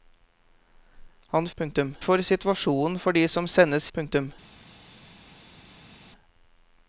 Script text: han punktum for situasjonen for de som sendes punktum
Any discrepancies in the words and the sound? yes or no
no